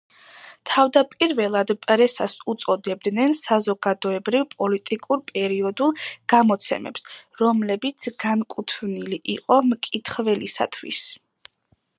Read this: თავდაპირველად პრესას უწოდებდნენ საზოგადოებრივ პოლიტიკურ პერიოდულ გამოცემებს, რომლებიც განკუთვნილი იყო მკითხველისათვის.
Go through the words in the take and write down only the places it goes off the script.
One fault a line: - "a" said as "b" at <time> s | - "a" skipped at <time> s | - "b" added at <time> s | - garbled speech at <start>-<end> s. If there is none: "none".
none